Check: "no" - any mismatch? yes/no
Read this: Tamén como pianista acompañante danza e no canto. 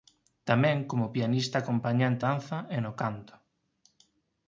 no